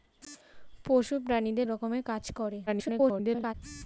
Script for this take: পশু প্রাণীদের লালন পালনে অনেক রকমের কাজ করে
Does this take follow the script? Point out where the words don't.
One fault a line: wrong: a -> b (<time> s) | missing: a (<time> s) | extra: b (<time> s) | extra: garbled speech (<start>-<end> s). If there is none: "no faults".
missing: লালন পালনে অনেক (1.7 s)
extra: garbled speech (2.7-3.5 s)